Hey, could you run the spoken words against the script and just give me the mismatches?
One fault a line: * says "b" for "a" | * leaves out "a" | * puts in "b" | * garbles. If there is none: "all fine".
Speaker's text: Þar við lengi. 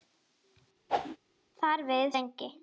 all fine